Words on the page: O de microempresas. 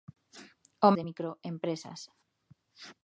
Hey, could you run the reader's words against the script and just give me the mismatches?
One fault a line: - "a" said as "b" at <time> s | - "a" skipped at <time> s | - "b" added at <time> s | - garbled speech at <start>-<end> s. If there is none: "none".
none